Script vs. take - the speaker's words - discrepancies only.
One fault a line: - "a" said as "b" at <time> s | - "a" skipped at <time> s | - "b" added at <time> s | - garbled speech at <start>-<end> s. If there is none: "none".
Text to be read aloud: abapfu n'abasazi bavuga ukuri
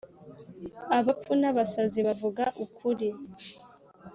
none